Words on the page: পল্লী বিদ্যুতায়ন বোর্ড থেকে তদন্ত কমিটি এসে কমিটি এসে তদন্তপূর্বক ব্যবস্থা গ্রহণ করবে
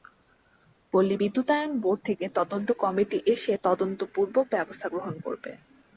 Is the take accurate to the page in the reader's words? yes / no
no